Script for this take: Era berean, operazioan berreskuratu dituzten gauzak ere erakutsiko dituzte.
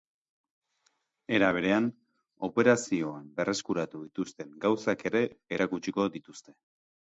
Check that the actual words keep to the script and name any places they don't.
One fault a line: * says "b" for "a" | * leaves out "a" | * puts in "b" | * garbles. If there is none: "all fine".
all fine